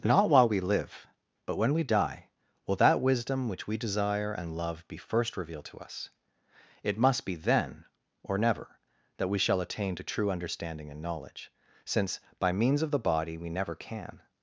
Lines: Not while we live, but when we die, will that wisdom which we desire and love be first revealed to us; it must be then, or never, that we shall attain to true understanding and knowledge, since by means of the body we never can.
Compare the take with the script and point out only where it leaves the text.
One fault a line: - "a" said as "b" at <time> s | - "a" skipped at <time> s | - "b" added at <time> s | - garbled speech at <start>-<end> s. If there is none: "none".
none